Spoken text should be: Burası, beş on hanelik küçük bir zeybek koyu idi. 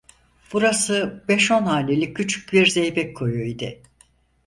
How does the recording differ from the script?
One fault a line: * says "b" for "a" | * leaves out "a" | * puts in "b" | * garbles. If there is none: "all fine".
all fine